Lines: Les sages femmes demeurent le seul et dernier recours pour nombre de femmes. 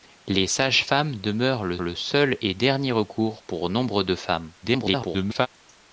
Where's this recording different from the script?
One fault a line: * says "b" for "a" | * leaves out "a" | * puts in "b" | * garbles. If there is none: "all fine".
* puts in "le"
* garbles